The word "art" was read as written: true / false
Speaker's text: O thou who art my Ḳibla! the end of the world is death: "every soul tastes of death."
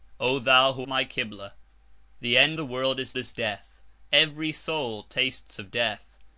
false